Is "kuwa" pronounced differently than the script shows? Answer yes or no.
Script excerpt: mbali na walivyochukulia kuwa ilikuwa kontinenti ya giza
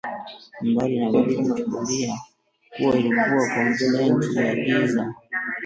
no